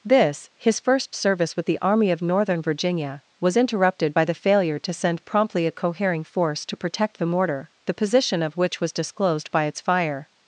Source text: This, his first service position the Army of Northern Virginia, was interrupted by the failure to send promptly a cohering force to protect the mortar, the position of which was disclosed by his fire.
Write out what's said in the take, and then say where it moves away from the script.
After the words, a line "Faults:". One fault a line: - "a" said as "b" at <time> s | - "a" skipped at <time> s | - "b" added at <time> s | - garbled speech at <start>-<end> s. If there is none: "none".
This, his first service with the Army of Northern Virginia, was interrupted by the failure to send promptly a cohering force to protect the mortar, the position of which was disclosed by its fire.
Faults:
- "position" said as "with" at 1.6 s
- "his" said as "its" at 9.6 s